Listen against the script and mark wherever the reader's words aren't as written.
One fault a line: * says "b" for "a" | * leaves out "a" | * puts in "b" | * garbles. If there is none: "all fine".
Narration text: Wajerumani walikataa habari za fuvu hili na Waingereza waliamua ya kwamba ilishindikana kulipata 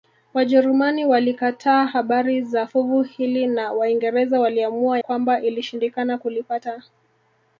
* leaves out "ya"